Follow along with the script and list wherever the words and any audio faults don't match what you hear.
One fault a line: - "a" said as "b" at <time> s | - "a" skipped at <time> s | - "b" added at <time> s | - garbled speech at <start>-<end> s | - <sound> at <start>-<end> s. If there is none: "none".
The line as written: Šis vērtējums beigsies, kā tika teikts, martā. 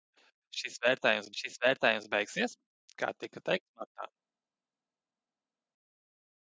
- "šis vērtējums" added at 1.4 s